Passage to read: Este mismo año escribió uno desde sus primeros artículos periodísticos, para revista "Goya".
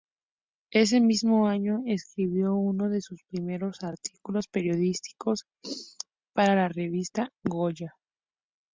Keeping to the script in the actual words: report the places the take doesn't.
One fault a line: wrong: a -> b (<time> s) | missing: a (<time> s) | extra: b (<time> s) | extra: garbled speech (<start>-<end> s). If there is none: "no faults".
wrong: Este -> Ese (0.7 s)
wrong: desde -> de (2.9 s)
extra: la (6.5 s)